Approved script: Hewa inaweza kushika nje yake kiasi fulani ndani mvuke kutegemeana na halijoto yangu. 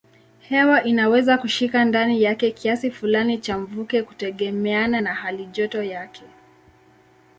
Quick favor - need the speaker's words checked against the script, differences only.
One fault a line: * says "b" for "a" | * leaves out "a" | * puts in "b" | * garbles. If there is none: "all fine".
* says "ndani" for "nje"
* says "cha" for "ndani"
* says "yake" for "yangu"